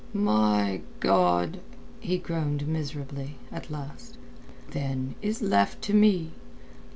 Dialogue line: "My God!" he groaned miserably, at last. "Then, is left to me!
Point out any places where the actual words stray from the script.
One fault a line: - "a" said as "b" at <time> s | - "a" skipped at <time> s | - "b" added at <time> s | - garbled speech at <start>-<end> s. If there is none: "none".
none